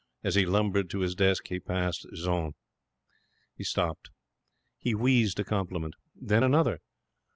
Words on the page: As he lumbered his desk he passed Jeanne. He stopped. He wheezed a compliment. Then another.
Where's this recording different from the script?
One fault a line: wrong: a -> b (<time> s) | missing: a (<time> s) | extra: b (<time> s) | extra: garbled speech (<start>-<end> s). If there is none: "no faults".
extra: to (0.9 s)